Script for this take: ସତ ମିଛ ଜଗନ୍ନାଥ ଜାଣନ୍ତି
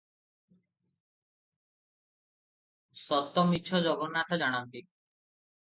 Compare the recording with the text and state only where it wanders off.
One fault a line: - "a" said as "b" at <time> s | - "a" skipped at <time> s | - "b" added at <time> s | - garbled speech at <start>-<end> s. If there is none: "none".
none